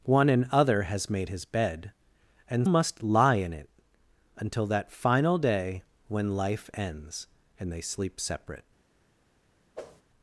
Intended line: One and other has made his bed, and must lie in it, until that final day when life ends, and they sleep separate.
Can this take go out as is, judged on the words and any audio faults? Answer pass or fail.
fail